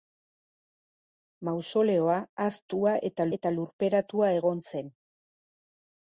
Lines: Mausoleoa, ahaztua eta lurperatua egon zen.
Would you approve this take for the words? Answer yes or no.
no